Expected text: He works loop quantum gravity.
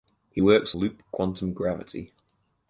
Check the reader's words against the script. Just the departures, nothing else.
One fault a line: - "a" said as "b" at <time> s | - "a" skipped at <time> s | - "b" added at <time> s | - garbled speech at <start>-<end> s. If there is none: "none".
none